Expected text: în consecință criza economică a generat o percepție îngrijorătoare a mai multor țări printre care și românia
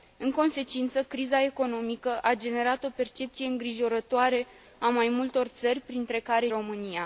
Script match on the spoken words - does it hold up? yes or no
no